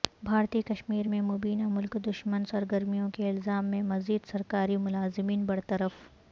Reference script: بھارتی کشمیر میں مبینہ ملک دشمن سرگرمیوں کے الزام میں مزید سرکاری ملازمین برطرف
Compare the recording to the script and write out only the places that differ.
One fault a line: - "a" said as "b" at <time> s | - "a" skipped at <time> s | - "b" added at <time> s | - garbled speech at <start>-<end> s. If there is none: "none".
none